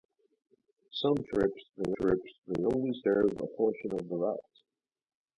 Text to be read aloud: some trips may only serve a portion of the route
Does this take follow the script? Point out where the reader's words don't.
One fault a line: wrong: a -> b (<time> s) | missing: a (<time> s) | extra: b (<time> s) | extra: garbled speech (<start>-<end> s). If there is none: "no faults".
extra: trips may (2.0 s)